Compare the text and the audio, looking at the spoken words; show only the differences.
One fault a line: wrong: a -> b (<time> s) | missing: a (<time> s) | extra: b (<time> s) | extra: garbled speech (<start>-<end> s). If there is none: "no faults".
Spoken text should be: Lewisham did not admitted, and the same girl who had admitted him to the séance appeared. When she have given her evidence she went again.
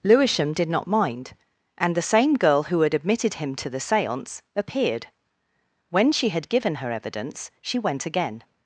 wrong: admitted -> mind (0.9 s)
wrong: have -> had (6.3 s)